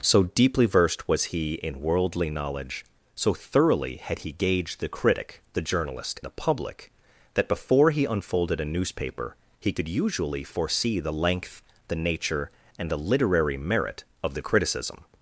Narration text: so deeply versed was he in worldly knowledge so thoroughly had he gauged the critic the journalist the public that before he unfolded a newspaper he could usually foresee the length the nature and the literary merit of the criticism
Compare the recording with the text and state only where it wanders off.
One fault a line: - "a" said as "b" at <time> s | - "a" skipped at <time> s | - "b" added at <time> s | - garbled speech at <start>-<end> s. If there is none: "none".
none